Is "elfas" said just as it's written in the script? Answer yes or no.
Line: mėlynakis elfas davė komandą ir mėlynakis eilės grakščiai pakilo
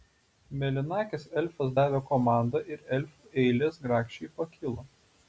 yes